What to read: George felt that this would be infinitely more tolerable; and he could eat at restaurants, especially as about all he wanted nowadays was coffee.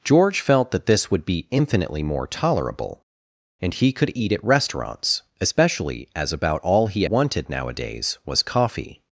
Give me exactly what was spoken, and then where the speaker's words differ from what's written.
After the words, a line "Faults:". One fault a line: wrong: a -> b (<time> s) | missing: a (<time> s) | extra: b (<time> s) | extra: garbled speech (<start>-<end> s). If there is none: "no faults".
George felt that this would be infinitely more tolerable; and he could eat at restaurants, especially as about all he wanted nowadays was coffee.
Faults:
no faults